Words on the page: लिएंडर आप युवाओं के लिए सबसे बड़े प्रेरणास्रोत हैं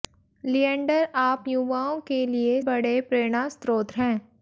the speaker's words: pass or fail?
fail